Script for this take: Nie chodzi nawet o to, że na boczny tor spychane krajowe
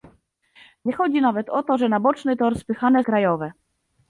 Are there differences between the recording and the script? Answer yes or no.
no